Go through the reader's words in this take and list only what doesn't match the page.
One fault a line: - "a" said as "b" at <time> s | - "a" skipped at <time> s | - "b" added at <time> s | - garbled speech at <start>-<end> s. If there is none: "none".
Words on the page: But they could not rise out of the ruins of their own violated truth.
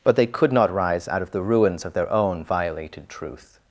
none